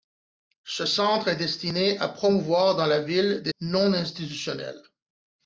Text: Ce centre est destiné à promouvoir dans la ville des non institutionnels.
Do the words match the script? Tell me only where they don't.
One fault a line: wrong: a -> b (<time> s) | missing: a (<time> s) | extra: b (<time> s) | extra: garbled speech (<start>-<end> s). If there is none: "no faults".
no faults